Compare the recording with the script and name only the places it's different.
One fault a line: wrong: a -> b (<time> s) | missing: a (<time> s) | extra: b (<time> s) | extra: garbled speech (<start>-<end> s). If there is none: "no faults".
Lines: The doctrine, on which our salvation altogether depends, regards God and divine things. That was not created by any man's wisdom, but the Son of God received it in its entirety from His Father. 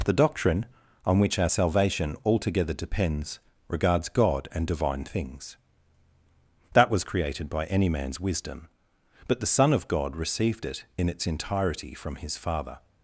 missing: not (7.0 s)